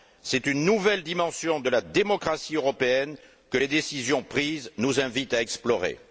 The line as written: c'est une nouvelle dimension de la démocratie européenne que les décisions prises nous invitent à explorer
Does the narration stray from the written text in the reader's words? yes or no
no